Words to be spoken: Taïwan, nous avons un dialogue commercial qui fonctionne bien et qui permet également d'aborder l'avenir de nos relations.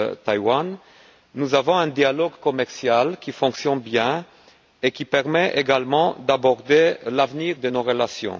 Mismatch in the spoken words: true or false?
false